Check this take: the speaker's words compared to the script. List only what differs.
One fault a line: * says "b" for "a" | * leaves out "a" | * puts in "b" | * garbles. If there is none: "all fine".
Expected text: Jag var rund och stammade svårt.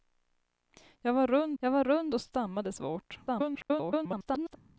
* puts in "jag var rund"
* garbles